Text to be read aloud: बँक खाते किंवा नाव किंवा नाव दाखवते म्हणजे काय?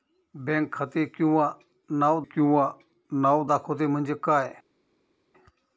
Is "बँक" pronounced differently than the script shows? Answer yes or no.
no